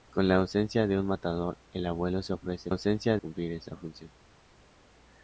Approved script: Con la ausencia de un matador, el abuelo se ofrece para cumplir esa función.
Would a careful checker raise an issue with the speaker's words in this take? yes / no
yes